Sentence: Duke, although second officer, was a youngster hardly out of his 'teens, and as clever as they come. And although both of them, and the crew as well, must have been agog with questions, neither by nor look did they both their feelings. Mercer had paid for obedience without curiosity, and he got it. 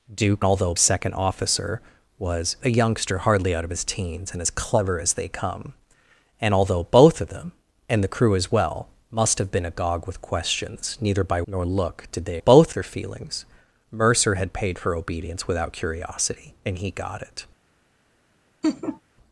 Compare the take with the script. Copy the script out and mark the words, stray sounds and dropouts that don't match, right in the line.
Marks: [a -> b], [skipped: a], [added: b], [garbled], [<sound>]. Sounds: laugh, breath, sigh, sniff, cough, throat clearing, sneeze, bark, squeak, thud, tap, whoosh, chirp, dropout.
Duke, although second officer, was a youngster hardly out of his 'teens, and as clever as they come. And although both of them, and the crew as well, must have been agog with questions, neither by nor look did they both their feelings. Mercer had paid for obedience without curiosity, and he got it. [laugh]